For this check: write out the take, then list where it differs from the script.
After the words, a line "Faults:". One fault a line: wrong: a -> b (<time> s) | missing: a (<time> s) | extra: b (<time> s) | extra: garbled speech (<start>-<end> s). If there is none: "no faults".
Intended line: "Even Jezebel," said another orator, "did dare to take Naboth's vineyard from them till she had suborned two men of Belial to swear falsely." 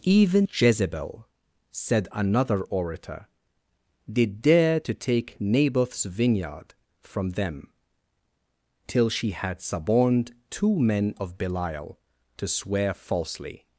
"Even Jezebel," said another orator, "did dare to take Naboth's vineyard from them till she had suborned two men of Belial to swear falsely."
Faults:
no faults